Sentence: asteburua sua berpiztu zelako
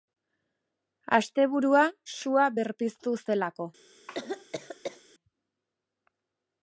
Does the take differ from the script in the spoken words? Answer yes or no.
no